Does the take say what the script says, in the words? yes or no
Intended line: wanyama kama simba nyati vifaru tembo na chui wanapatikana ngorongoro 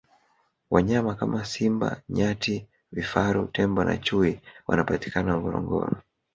yes